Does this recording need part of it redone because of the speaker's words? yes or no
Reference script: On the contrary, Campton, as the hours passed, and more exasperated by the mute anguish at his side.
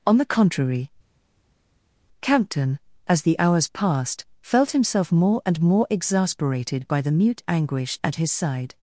yes